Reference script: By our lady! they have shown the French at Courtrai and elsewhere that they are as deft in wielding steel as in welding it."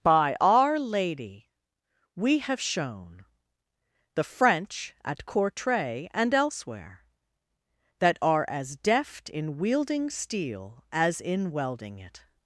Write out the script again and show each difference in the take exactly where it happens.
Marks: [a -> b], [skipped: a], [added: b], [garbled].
By our lady! [they -> we] have shown the French at Courtrai and elsewhere that [skipped: they] are as deft in wielding steel as in welding it."